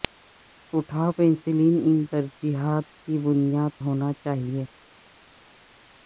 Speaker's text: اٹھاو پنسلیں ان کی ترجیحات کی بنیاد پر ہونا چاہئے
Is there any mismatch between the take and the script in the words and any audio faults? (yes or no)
yes